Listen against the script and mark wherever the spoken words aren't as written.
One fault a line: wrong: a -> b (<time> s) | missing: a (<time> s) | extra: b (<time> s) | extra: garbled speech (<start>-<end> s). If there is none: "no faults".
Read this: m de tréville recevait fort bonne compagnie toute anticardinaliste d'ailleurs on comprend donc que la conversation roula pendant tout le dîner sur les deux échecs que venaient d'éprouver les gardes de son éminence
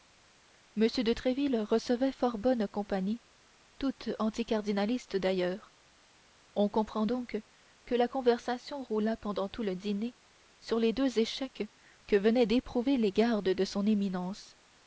no faults